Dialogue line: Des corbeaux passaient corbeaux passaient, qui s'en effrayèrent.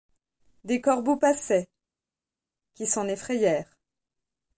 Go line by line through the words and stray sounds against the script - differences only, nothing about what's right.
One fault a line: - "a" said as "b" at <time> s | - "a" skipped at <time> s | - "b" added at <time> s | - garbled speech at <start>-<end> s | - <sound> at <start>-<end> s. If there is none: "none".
- "corbeaux passaient" skipped at 1.7 s